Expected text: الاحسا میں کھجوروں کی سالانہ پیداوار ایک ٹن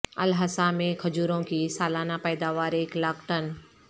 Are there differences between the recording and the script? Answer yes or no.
yes